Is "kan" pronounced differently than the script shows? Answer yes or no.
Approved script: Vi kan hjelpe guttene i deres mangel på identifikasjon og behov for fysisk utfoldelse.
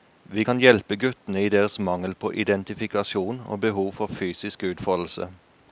no